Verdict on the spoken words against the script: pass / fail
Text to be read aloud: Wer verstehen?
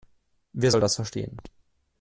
fail